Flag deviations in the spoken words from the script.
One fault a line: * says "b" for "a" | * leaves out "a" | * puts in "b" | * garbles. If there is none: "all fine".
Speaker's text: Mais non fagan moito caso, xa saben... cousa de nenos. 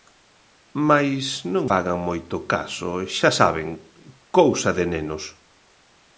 all fine